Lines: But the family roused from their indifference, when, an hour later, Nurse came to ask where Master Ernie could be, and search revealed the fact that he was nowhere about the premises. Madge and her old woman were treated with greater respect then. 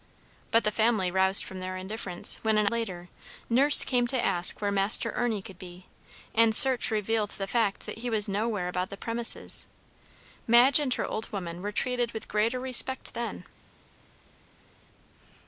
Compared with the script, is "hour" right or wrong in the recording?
wrong